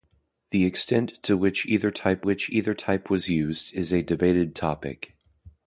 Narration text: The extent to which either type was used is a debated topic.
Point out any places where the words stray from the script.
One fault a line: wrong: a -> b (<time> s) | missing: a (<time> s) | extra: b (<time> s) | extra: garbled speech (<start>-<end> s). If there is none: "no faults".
extra: which either type (2.2 s)